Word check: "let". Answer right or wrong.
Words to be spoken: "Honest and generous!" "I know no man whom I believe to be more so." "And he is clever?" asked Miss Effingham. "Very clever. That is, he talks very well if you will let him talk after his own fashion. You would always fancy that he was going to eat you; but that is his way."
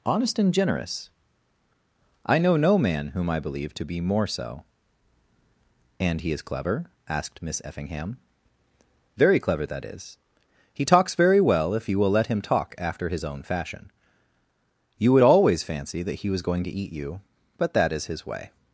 right